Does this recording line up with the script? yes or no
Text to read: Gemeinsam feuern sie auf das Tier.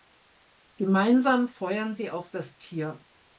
yes